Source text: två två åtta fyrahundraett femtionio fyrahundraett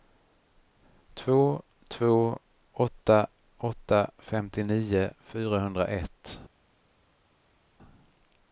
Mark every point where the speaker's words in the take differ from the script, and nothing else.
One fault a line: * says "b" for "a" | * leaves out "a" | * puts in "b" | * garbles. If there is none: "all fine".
* says "åtta" for "fyrahundraett"